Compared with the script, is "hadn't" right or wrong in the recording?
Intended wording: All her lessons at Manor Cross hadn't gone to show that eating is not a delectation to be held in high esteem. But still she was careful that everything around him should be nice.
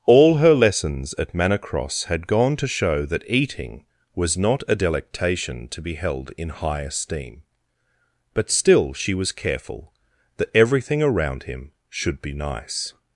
wrong